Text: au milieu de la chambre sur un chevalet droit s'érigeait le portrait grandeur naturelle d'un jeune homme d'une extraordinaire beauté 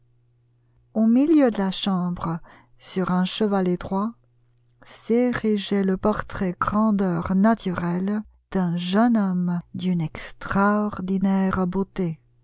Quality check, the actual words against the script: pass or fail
pass